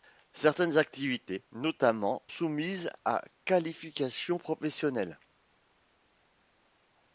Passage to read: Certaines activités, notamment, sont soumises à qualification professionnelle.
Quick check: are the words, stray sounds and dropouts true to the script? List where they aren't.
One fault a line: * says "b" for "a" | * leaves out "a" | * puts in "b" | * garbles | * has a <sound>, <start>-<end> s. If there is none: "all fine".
* leaves out "sont"